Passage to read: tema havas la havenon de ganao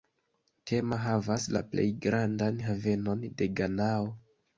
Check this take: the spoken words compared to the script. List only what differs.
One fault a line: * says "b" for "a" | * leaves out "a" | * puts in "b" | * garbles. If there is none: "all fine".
* puts in "plej grandan"